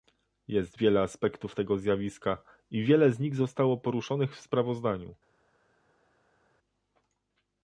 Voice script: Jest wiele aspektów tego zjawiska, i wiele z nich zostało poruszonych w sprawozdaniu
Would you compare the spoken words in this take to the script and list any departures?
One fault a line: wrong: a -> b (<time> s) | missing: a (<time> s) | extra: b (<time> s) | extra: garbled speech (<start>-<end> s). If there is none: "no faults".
no faults